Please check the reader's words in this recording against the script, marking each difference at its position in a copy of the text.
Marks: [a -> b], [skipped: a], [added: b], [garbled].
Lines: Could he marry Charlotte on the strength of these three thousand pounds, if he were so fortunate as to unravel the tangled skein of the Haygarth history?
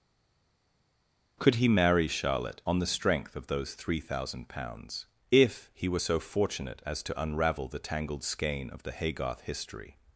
Could he marry Charlotte on the strength of [these -> those] three thousand pounds, if he were so fortunate as to unravel the tangled skein of the Haygarth history?